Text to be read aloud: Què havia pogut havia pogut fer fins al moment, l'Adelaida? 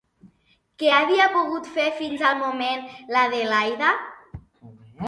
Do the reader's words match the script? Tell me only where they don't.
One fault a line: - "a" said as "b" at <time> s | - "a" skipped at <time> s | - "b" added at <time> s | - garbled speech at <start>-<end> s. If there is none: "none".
- "havia pogut" skipped at 1.7 s